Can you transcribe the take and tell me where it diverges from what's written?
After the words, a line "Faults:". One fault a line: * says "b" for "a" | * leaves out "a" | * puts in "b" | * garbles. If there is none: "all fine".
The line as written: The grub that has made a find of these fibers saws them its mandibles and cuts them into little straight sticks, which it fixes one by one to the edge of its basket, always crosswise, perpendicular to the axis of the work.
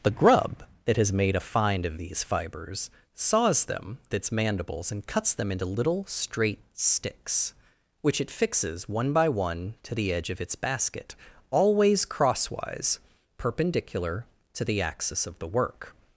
The grub that has made a find of these fibers saws them its mandibles and cuts them into little straight sticks, which it fixes one by one to the edge of its basket, always crosswise, perpendicular to the axis of the work.
Faults:
all fine